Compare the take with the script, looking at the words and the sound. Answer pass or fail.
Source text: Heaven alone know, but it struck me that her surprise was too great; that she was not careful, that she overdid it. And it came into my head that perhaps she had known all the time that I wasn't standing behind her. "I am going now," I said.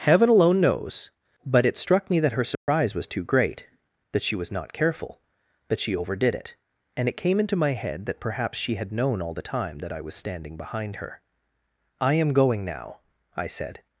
fail